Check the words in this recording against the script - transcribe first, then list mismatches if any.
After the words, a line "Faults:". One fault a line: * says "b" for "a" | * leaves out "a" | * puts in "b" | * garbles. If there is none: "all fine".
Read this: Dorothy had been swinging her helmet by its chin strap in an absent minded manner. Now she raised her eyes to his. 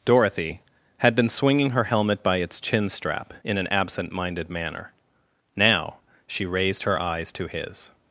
Dorothy had been swinging her helmet by its chin strap in an absent minded manner. Now she raised her eyes to his.
Faults:
all fine